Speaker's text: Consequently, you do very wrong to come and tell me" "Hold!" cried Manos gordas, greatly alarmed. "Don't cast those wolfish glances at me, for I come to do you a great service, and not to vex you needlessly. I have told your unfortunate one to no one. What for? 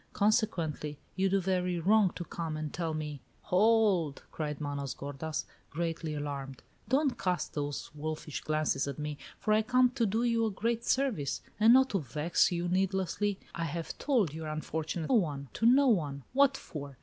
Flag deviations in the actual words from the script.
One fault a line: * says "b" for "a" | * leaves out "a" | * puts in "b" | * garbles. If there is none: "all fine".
all fine